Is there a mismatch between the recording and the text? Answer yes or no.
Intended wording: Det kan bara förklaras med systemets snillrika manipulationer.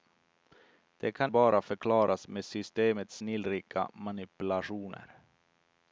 no